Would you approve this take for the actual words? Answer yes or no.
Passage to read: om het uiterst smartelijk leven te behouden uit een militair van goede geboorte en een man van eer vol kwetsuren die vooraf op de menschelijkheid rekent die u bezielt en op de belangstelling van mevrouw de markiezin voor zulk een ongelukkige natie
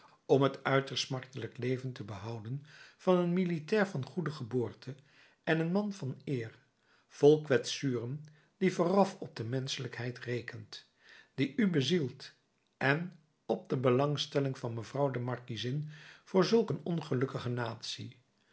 no